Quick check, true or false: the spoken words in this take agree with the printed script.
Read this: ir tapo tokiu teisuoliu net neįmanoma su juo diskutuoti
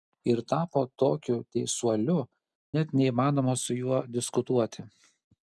true